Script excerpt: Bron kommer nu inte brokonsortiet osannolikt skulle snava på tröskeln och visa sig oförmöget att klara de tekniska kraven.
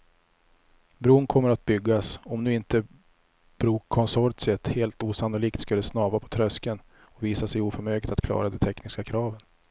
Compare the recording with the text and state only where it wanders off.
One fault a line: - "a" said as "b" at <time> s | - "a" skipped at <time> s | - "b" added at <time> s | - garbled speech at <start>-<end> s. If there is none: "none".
- "att byggas om" added at 1.5 s
- "helt" added at 4.7 s